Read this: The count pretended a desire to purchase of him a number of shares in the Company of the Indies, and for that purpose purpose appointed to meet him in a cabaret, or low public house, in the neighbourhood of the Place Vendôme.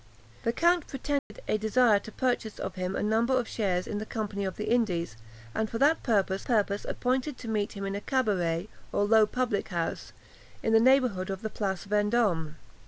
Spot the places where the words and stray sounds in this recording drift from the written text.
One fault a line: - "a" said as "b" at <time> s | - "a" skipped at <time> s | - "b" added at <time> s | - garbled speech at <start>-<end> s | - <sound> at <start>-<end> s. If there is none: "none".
- dropout at 1.2-1.3 s